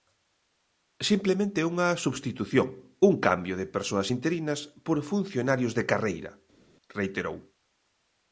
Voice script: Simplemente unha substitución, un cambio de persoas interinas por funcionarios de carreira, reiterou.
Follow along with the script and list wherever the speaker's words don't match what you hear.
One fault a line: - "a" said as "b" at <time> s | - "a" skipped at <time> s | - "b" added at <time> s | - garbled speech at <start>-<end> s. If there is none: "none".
none